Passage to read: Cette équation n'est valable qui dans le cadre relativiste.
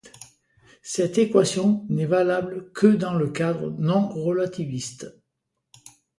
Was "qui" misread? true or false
true